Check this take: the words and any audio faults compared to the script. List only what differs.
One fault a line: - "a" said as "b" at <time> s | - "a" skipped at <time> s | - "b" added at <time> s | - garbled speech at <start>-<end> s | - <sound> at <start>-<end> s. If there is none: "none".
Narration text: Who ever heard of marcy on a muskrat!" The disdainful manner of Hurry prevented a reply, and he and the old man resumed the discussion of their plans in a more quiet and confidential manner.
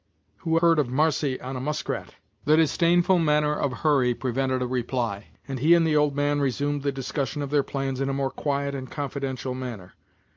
- "ever" skipped at 0.6 s